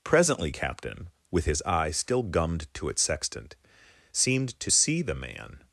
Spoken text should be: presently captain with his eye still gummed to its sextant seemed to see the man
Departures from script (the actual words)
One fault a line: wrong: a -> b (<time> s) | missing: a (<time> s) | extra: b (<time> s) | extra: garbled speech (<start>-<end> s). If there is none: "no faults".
no faults